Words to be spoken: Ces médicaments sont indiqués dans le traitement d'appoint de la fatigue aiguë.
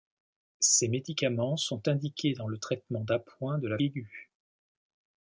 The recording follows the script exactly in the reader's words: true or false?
false